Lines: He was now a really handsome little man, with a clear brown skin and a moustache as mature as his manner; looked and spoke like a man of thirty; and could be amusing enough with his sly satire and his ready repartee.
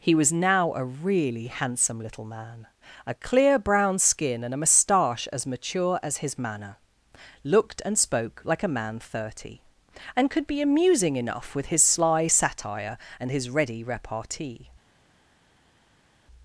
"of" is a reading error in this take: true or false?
true